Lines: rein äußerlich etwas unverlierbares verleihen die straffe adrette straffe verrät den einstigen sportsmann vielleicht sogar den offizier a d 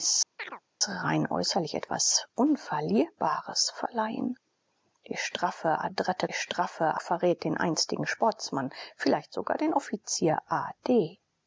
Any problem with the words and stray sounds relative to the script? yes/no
yes